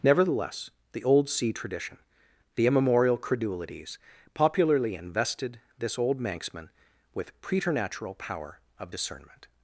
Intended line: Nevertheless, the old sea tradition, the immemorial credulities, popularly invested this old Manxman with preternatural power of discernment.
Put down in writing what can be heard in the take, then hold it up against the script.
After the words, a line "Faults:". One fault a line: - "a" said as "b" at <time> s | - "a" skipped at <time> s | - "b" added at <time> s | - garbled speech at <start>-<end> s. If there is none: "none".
Nevertheless, the old sea tradition, the immemorial credulities, popularly invested this old Manxman with preternatural power of discernment.
Faults:
none